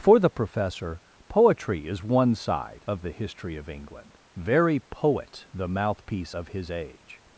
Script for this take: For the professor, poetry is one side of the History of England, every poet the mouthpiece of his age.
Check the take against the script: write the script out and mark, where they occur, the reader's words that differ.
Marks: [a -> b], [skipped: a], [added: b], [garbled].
For the professor, poetry is one side of the History of England, [every -> very] poet the mouthpiece of his age.